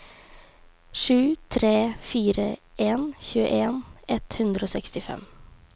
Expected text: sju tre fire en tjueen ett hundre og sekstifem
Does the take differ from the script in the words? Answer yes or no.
no